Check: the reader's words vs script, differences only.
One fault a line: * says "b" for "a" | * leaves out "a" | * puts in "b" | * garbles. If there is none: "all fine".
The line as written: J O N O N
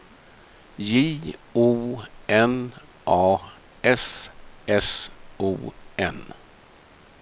* puts in "A S S"